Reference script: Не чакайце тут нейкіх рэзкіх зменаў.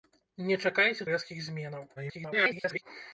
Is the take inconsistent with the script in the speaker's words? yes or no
yes